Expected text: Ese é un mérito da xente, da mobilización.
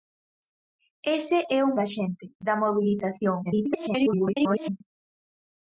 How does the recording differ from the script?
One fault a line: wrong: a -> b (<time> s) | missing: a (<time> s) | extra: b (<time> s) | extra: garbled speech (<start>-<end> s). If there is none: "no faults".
missing: mérito (1.7 s)
extra: garbled speech (3.4-4.8 s)